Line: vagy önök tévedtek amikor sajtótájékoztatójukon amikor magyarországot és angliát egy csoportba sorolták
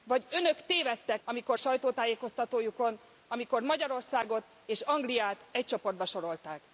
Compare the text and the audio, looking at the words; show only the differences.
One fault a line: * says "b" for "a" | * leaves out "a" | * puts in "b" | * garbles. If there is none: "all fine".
all fine